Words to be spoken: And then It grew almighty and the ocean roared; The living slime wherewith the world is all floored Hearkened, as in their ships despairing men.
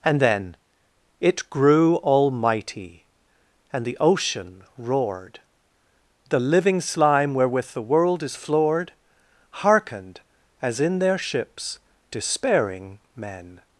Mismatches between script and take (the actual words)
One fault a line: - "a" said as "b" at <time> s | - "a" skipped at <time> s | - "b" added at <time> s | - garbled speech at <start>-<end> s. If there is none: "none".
- "all" skipped at 8.4 s